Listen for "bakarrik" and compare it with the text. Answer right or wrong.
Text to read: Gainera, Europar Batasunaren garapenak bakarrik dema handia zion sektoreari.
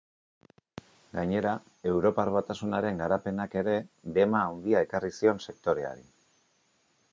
wrong